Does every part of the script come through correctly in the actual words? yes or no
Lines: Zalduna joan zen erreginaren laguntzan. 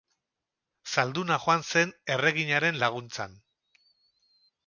yes